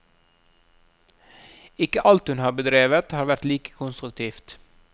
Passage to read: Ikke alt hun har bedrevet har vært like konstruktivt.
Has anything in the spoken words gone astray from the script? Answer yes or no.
no